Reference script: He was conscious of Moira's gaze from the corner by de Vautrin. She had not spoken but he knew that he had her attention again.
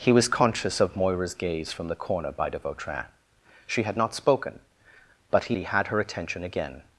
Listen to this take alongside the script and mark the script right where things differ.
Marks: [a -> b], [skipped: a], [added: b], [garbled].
He was conscious of Moira's gaze from the corner by de Vautrin. She had not spoken but he [skipped: knew that] he had her attention again.